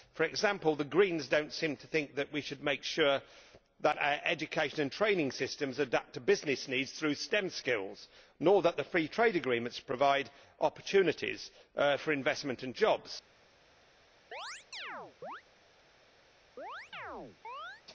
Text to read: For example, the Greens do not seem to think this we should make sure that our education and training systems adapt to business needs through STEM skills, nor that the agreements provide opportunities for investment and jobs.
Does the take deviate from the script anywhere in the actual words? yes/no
yes